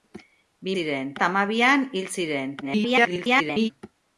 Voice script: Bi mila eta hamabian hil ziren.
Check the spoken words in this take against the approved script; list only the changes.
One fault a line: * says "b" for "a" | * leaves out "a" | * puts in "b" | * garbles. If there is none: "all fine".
* says "ziren" for "mila"
* garbles